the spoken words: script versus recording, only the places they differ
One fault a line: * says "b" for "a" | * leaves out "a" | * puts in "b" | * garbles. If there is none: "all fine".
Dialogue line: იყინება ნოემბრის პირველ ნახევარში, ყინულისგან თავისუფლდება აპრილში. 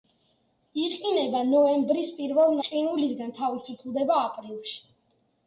* leaves out "ნახევარში"